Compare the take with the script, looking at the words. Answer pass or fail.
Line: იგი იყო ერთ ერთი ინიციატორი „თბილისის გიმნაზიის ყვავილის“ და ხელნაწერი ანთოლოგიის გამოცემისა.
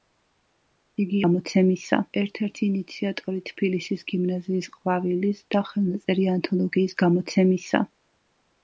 fail